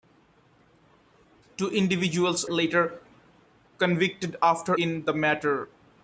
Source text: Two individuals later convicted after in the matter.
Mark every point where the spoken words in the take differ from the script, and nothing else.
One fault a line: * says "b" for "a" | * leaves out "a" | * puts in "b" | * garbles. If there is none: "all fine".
all fine